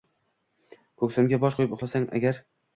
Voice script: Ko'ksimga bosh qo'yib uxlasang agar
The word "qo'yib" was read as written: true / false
true